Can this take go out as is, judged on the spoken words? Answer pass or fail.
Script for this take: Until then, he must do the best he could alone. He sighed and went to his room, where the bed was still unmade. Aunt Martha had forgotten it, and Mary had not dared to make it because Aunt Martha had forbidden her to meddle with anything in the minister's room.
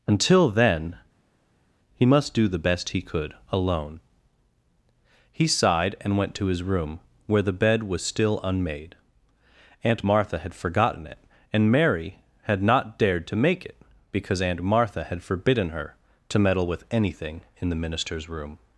pass